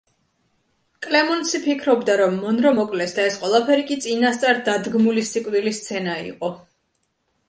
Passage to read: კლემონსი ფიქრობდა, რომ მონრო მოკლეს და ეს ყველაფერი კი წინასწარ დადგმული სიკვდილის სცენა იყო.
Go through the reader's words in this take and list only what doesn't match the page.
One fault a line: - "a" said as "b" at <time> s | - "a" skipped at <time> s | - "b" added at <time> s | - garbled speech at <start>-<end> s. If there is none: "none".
none